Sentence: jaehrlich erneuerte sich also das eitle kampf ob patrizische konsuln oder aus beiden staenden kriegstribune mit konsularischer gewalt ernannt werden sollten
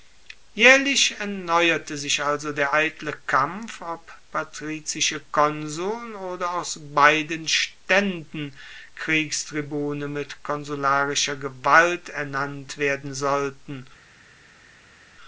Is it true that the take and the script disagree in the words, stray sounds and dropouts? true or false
true